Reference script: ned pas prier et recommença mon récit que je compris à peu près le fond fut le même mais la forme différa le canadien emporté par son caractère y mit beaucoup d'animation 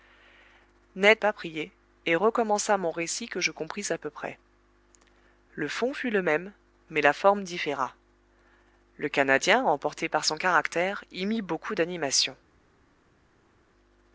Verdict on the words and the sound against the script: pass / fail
pass